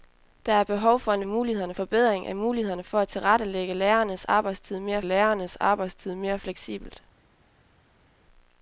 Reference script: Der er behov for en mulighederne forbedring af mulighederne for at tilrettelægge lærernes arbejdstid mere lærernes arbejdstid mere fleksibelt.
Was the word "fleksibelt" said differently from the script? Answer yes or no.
no